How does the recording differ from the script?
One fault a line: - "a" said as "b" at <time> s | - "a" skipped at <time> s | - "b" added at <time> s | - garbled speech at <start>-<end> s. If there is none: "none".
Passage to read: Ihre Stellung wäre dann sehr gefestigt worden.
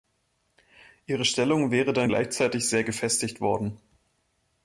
- "gleichzeitig" added at 2.0 s